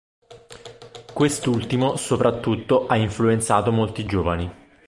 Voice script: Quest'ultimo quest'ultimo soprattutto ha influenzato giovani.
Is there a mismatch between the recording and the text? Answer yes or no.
yes